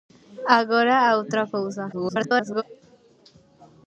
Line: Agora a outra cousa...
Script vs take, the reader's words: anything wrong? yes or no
yes